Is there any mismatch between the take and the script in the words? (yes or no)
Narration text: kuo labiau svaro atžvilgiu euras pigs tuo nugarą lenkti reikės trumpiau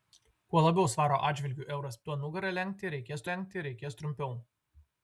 yes